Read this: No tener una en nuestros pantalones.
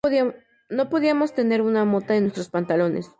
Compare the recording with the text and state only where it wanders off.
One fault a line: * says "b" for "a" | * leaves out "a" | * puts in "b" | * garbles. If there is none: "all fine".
* puts in "podíamos"
* puts in "mota"